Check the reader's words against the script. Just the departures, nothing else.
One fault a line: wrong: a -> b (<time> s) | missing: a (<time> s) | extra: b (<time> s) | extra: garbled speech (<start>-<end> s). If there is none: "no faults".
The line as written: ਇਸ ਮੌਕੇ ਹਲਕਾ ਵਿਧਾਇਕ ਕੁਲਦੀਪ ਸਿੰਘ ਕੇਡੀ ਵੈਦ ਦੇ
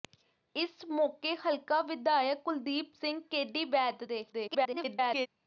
extra: garbled speech (4.3-5.3 s)